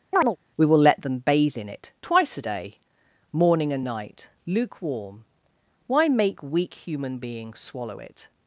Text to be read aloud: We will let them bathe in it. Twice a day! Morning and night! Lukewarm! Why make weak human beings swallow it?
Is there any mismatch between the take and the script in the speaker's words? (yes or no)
no